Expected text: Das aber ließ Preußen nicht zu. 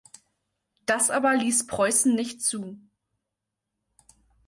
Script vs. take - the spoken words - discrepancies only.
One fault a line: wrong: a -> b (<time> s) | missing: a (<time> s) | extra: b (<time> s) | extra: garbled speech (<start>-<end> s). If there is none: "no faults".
no faults